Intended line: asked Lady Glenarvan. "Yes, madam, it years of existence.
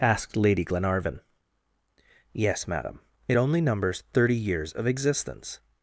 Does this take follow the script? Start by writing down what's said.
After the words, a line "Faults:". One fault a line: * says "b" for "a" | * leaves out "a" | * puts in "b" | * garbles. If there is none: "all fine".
asked Lady Glenarvan. "Yes, madam, it only numbers thirty years of existence.
Faults:
* puts in "only numbers thirty"